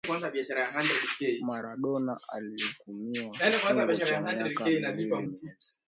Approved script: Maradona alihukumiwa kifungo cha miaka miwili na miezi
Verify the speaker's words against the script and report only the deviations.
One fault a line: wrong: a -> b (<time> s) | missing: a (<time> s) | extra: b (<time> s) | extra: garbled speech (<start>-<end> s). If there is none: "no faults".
missing: na (5.3 s)